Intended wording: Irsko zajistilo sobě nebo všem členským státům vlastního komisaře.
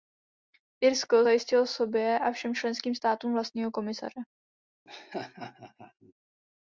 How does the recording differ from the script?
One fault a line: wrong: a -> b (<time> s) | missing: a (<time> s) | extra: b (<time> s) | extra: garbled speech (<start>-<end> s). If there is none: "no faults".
wrong: nebo -> a (2.2 s)